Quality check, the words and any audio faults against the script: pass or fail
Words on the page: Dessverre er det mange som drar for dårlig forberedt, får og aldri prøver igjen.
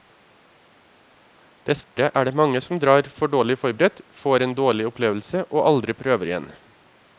fail